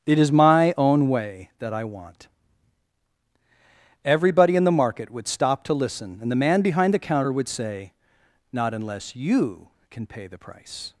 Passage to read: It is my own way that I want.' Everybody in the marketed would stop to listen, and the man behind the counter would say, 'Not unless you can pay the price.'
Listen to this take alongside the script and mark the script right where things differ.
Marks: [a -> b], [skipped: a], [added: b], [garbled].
It is my own way that I want.' Everybody in the [marketed -> market] would stop to listen, and the man behind the counter would say, 'Not unless you can pay the price.'